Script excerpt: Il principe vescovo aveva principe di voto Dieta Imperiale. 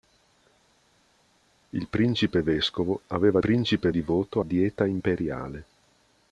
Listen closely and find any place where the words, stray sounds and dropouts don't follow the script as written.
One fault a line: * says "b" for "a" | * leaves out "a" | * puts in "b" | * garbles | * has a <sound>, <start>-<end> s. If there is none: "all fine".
all fine